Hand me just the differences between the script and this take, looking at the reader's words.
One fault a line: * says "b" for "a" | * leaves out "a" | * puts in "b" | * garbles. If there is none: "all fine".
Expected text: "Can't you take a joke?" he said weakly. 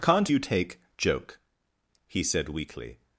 * leaves out "a"